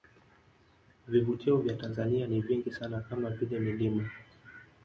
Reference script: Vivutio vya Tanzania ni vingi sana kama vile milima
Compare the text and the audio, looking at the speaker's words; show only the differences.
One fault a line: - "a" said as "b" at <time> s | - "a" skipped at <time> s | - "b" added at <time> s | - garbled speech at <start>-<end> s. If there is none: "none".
none